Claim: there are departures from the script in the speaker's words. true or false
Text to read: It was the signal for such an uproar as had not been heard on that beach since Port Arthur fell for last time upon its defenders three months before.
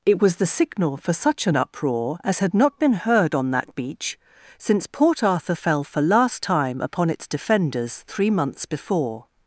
false